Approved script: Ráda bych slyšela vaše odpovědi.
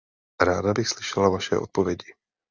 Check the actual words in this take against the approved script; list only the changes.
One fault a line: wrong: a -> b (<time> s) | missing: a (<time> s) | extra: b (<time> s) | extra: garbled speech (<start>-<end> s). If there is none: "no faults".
no faults